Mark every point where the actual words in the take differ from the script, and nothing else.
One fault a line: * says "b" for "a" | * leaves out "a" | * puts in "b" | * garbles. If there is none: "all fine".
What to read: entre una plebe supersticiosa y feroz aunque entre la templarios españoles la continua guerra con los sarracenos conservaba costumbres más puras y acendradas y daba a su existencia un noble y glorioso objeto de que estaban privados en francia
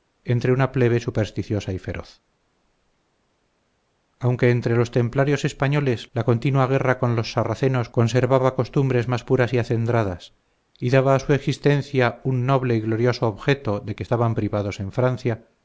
* says "los" for "la"